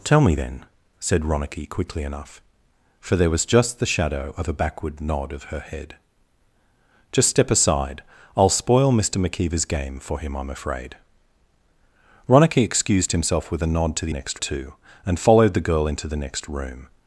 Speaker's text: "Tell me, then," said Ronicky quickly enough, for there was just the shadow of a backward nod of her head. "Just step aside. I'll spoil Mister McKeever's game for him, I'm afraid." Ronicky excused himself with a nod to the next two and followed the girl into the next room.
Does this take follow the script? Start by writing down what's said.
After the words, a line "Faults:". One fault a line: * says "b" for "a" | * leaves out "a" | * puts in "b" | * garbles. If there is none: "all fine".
"Tell me, then," said Ronicky quickly enough, for there was just the shadow of a backward nod of her head. "Just step aside. I'll spoil Mister McKeever's game for him, I'm afraid." Ronicky excused himself with a nod to the next two and followed the girl into the next room.
Faults:
all fine